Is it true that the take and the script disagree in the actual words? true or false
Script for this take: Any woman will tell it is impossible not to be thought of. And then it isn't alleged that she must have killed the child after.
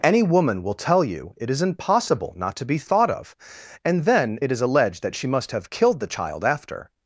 true